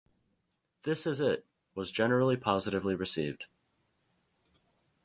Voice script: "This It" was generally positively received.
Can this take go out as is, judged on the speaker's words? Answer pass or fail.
fail